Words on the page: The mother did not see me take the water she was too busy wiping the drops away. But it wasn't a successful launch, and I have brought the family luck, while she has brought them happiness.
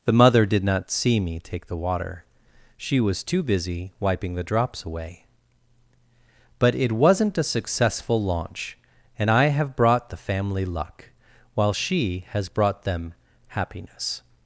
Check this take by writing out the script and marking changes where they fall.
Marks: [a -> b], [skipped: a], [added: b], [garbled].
The mother did not see me take the water she was too busy wiping the drops away. But it wasn't a successful launch, and I have brought the family luck, while she has brought them happiness.